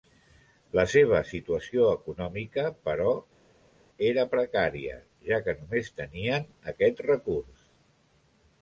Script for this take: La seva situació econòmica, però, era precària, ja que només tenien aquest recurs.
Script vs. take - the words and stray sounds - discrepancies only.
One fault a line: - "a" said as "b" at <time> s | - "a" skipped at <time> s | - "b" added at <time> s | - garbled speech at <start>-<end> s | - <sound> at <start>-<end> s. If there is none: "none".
none